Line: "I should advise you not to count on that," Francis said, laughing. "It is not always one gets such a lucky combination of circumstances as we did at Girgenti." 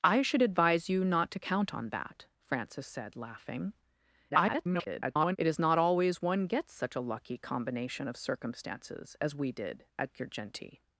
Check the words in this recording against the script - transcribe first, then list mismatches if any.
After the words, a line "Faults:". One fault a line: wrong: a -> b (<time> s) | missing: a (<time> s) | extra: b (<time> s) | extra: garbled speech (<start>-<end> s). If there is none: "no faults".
"I should advise you not to count on that," Francis said, laughing. [garbled] "It is not always one gets such a lucky combination of circumstances as we did at Girgenti."
Faults:
extra: garbled speech (4.3-5.4 s)